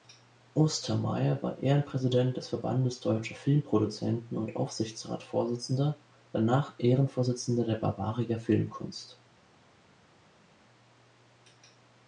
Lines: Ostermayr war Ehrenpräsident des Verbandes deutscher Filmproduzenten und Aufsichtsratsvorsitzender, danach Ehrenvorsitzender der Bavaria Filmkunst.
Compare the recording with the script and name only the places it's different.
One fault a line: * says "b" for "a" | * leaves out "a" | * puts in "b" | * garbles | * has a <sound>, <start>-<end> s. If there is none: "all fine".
all fine